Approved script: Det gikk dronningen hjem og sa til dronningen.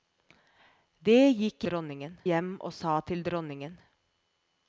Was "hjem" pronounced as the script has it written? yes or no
yes